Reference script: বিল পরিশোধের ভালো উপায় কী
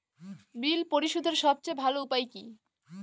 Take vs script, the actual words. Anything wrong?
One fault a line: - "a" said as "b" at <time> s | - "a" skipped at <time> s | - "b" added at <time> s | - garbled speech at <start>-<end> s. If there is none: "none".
- "সবচেয়ে" added at 1.4 s